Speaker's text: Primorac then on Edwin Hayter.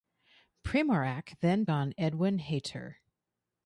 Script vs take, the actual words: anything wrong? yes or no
no